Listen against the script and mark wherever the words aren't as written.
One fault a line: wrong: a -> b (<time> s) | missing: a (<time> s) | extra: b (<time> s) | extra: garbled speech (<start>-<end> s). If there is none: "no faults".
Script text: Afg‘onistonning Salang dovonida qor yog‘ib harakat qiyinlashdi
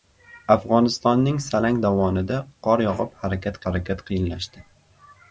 extra: harakat (3.7 s)